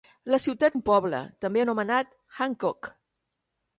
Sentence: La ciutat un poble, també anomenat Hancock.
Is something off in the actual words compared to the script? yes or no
no